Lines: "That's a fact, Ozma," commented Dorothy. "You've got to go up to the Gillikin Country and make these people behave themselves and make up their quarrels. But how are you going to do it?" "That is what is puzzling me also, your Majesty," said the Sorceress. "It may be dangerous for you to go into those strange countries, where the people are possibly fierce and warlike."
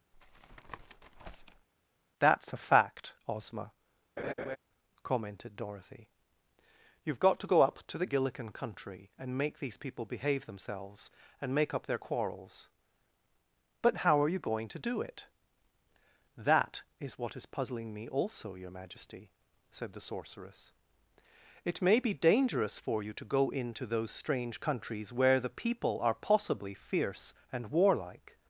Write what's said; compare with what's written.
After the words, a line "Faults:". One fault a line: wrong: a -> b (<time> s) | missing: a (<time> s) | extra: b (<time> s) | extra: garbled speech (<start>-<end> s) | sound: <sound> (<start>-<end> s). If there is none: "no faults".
"That's a fact, Ozma," commented Dorothy. "You've got to go up to the Gillikin Country and make these people behave themselves and make up their quarrels. But how are you going to do it?" "That is what is puzzling me also, your Majesty," said the Sorceress. "It may be dangerous for you to go into those strange countries, where the people are possibly fierce and warlike."
Faults:
sound: tap (0.1-1.7 s)
sound: laugh (4.2-4.6 s)